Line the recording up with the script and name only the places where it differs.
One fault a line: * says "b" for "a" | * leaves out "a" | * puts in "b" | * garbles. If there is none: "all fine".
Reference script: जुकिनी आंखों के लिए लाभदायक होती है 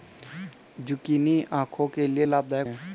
* leaves out "होती"